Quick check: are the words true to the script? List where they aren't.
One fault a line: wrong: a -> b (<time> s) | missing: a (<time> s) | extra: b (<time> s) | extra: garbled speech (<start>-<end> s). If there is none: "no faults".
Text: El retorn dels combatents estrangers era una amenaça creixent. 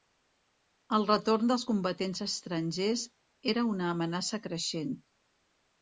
no faults